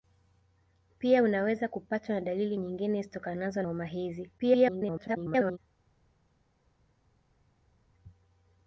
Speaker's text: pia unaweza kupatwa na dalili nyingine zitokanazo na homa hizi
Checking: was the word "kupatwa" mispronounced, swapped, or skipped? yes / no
no